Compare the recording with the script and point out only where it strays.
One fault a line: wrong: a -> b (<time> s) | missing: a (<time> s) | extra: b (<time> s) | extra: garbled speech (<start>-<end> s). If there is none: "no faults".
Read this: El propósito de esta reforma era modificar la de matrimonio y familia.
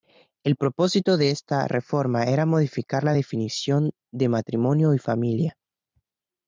extra: definición (3.1 s)